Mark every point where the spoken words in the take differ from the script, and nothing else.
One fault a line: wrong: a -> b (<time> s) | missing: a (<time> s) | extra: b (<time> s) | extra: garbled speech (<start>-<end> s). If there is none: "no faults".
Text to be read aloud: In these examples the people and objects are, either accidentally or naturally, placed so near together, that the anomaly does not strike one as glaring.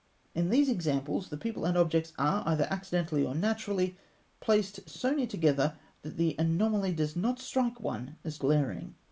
no faults